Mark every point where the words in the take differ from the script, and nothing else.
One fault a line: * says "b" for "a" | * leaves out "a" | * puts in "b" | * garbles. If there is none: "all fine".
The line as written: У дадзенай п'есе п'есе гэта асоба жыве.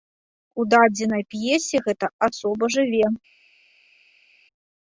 * leaves out "п'есе"